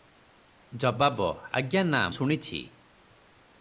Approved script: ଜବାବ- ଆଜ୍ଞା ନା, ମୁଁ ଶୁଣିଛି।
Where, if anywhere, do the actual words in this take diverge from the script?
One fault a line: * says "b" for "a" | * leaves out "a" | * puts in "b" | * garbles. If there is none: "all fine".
* leaves out "ମୁଁ"